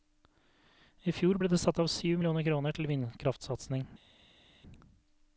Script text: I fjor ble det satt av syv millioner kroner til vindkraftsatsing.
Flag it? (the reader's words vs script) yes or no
no